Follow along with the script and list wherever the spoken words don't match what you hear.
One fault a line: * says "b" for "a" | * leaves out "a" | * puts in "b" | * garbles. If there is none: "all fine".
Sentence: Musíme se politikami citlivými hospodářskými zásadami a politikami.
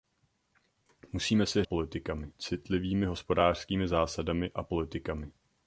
all fine